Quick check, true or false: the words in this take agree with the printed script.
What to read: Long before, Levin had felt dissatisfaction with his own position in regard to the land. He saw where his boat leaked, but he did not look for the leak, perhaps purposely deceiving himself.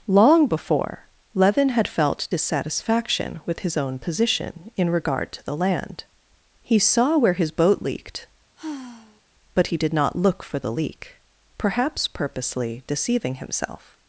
true